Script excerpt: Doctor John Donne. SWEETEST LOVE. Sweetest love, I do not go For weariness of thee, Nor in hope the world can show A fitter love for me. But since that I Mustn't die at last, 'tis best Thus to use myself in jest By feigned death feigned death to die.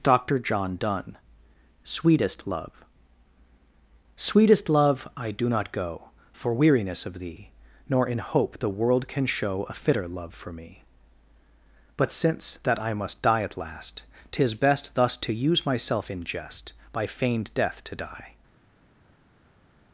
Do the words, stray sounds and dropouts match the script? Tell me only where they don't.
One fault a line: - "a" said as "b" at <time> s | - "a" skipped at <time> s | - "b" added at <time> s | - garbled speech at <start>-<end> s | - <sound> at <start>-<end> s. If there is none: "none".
- "Mustn't" said as "Must" at 12.9 s
- "feigned death" skipped at 17.8 s